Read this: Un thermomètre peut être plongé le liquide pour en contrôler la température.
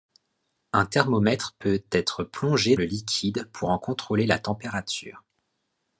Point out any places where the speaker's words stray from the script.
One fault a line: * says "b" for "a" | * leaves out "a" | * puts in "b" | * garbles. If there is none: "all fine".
all fine